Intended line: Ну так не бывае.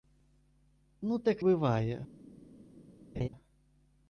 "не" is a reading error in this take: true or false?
true